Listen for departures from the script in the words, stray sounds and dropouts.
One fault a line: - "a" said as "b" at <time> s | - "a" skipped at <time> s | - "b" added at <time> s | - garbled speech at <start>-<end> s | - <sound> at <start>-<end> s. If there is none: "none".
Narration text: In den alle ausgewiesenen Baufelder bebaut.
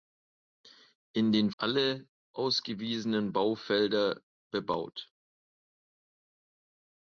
none